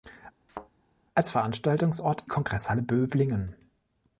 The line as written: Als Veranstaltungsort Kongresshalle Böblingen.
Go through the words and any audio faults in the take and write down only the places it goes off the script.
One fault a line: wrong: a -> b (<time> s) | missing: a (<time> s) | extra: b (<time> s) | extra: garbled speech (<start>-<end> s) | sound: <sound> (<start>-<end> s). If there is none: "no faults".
sound: thud (0.5-0.7 s)